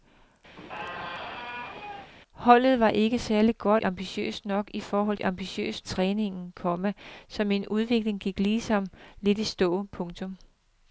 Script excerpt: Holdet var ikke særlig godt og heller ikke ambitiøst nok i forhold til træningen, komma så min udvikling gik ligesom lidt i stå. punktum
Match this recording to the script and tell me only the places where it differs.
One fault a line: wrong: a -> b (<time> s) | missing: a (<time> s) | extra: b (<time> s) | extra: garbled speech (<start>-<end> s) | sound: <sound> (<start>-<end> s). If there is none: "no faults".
sound: squeak (0.6-2.1 s)
missing: og heller ikke (3.8 s)
wrong: til -> ambitiøst (5.2 s)